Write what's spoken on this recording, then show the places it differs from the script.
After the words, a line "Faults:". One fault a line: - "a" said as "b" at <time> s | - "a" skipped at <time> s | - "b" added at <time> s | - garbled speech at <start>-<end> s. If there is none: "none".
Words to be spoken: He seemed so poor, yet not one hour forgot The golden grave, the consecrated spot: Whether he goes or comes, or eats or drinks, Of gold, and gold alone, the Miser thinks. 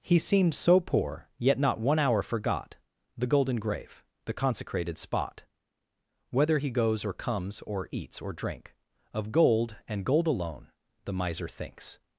He seemed so poor, yet not one hour forgot The golden grave, the consecrated spot: Whether he goes or comes, or eats or drink, Of gold, and gold alone, the Miser thinks.
Faults:
- "drinks" said as "drink" at 8.3 s